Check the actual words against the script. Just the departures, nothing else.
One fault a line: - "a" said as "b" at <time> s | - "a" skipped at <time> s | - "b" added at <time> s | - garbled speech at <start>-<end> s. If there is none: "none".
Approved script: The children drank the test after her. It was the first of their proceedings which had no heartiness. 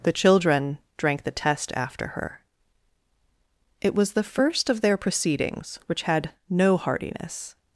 none